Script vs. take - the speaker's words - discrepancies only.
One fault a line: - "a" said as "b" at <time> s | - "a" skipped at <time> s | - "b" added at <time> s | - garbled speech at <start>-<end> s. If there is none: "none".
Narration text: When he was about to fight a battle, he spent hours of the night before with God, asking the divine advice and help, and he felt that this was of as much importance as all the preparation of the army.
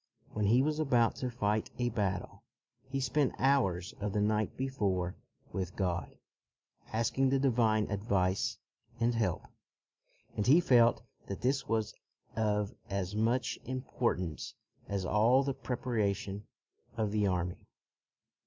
none